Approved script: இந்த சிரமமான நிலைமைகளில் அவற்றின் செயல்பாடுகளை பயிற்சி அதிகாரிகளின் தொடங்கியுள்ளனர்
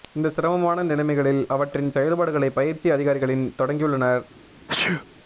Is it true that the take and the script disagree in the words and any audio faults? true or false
true